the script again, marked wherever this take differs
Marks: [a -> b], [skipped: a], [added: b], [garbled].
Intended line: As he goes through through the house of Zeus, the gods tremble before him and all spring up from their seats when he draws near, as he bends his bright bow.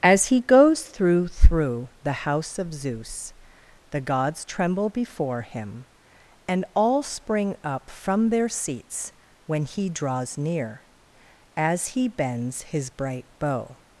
As he goes through through the house of Zeus, the gods tremble before him and all spring up from their seats when he draws near, as he bends his bright bow.